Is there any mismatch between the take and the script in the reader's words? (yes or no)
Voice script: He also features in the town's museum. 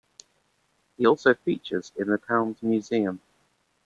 no